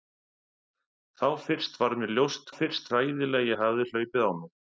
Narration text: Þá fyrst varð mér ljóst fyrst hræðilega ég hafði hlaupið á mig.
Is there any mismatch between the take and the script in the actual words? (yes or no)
no